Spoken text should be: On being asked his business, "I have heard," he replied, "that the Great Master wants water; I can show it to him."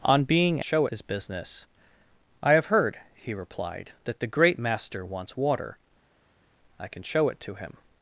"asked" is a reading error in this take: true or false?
true